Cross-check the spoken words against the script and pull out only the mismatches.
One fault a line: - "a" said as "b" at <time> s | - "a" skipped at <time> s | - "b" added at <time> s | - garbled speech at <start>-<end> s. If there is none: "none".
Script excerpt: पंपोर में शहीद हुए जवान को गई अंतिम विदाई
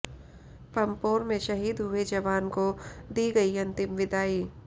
- "दी" added at 3.1 s